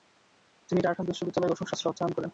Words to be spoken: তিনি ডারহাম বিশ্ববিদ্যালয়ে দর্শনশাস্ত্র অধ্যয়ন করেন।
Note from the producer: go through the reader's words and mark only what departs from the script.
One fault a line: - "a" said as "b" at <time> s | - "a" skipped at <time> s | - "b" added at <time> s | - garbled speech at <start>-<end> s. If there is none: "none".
none